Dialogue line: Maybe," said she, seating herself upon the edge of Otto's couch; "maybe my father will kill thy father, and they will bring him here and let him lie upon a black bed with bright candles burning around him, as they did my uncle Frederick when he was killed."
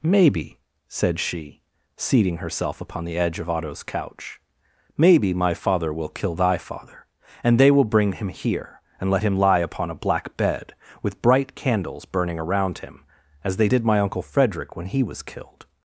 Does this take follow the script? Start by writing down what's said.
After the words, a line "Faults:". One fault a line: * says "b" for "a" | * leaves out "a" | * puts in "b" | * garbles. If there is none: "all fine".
Maybe," said she, seating herself upon the edge of Otto's couch; "maybe my father will kill thy father, and they will bring him here and let him lie upon a black bed with bright candles burning around him, as they did my uncle Frederick when he was killed."
Faults:
all fine